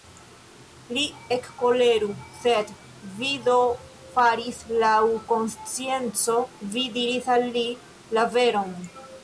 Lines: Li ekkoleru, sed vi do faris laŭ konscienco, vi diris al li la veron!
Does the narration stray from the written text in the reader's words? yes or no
no